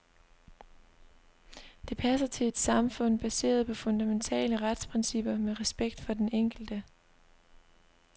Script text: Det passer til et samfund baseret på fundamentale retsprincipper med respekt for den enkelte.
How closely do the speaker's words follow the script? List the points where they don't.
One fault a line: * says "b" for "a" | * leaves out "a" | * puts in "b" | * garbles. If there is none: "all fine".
all fine